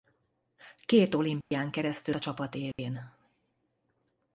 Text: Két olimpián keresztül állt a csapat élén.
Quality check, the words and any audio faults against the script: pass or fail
fail